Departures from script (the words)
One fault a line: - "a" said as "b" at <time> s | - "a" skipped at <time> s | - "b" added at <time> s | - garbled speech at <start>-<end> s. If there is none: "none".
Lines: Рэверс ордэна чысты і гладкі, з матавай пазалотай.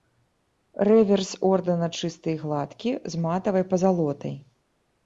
none